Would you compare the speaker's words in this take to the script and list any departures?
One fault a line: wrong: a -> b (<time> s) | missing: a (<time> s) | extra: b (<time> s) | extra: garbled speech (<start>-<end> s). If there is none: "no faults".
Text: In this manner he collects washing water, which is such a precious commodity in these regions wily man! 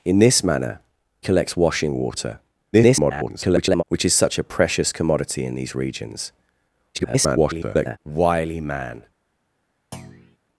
missing: he (0.8 s)
extra: garbled speech (2.7-3.8 s)
extra: garbled speech (6.9-8.0 s)